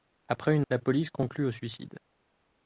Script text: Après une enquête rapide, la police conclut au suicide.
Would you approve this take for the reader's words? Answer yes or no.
no